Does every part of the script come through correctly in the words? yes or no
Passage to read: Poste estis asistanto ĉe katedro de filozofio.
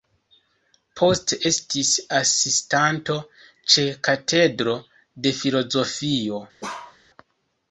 yes